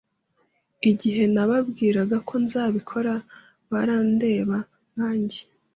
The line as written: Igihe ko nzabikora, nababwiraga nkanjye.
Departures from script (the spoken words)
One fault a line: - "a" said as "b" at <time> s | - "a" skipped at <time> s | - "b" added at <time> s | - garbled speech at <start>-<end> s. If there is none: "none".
- "nababwiraga" added at 1.3 s
- "nababwiraga" said as "barandeba" at 3.7 s